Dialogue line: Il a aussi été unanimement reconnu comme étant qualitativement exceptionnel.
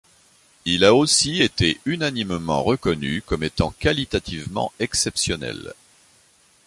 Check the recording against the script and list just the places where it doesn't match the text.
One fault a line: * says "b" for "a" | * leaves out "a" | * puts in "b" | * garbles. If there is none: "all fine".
all fine